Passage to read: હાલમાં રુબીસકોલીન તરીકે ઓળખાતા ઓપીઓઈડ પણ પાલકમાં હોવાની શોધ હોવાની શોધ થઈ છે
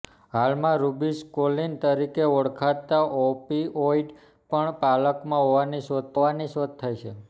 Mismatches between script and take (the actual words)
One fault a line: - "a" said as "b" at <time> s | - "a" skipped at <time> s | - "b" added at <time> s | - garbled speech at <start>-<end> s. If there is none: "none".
none